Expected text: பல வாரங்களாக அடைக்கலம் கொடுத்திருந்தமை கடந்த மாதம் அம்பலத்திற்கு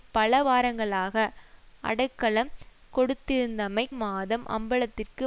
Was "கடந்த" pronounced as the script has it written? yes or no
no